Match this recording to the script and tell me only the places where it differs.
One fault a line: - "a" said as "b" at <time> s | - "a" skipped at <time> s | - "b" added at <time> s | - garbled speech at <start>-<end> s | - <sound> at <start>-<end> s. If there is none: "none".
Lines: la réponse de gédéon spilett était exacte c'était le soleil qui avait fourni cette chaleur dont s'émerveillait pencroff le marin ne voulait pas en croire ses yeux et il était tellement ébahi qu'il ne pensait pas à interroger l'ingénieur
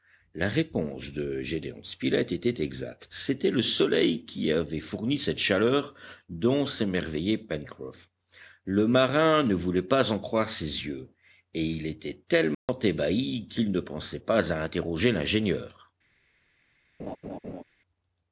- dropout at 12.5-12.7 s
- laugh at 17.0-17.6 s